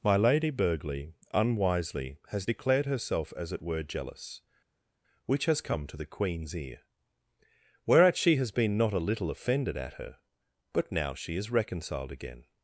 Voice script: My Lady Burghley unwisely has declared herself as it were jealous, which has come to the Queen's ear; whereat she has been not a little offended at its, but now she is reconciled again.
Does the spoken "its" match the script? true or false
false